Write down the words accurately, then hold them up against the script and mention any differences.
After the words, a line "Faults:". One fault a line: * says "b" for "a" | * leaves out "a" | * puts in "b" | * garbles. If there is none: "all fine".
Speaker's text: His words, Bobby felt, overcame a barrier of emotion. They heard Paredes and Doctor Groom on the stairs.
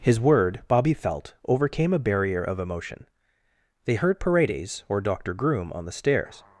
His word, Bobby felt, overcame a barrier of emotion. They heard Paredes or Doctor Groom on the stairs.
Faults:
* says "word" for "words"
* says "or" for "and"